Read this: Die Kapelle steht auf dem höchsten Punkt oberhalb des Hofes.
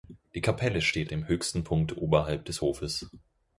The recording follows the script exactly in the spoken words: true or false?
false